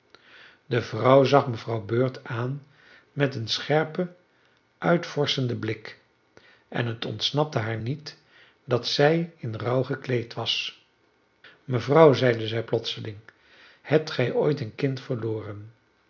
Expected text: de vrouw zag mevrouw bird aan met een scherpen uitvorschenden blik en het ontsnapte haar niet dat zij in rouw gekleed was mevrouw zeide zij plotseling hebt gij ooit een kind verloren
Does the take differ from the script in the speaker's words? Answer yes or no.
no